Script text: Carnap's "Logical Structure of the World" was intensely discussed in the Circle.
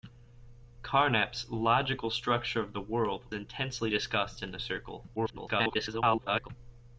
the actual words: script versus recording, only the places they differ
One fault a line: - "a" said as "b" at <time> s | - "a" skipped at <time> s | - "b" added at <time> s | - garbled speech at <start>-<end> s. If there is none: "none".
- "was" skipped at 3.4 s
- garbled speech at 5.2-6.5 s